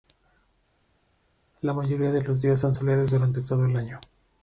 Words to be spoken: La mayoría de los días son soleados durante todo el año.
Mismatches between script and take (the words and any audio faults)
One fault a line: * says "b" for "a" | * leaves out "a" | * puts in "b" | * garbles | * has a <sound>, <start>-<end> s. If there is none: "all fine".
all fine